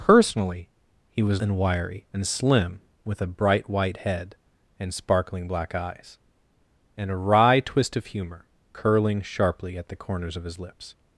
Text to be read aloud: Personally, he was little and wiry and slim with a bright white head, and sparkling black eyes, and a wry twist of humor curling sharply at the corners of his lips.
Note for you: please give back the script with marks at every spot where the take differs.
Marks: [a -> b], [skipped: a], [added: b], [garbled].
Personally, he was [skipped: little] and wiry and slim with a bright white head, and sparkling black eyes, and a wry twist of humor curling sharply at the corners of his lips.